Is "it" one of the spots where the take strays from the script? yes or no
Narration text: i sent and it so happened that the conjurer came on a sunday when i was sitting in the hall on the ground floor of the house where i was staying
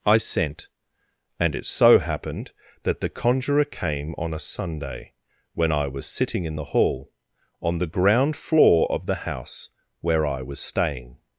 no